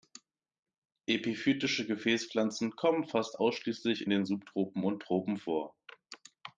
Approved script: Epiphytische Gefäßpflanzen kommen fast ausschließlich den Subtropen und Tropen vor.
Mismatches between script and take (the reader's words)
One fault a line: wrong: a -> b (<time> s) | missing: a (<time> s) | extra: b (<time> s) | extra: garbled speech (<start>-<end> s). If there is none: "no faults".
no faults